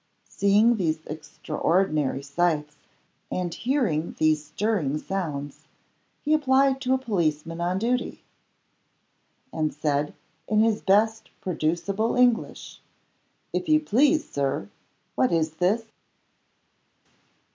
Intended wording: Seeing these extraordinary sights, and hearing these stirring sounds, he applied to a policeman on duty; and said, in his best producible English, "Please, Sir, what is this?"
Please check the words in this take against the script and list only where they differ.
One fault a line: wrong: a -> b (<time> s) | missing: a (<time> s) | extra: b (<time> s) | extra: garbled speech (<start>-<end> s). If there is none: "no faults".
extra: If you (13.5 s)